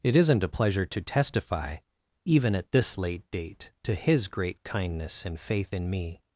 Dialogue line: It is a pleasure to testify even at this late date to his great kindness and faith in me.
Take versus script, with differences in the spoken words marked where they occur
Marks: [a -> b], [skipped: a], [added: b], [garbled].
It [is -> isn't] a pleasure to testify even at this late date to his great kindness and faith in me.